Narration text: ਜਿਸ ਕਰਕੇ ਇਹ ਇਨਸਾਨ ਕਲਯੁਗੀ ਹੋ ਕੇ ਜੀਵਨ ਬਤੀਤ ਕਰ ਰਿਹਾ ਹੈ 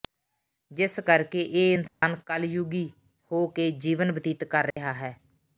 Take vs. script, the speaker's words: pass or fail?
pass